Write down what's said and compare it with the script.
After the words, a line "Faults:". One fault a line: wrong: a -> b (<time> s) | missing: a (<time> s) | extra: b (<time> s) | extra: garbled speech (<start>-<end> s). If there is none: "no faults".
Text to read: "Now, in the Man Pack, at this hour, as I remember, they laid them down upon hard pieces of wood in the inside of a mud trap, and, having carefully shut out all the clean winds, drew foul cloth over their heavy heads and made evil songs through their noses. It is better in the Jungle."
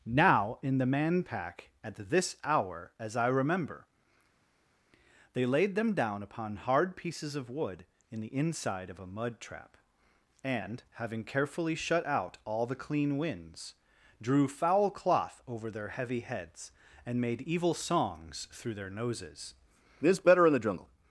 "Now, in the Man Pack, at this hour, as I remember, they laid them down upon hard pieces of wood in the inside of a mud trap, and, having carefully shut out all the clean winds, drew foul cloth over their heavy heads and made evil songs through their noses. This better in the Jungle."
Faults:
wrong: It is -> This (20.0 s)